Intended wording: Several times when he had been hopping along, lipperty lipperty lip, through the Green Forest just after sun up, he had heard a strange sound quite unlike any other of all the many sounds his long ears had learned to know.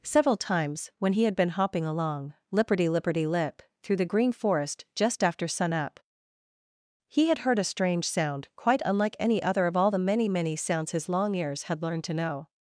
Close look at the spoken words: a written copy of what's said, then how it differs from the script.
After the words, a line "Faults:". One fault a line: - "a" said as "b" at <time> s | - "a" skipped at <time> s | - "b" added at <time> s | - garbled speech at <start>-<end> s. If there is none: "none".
Several times when he had been hopping along, lipperty lipperty lip, through the Green Forest just after sun up, he had heard a strange sound quite unlike any other of all the many many sounds his long ears had learned to know.
Faults:
- "many" added at 10.3 s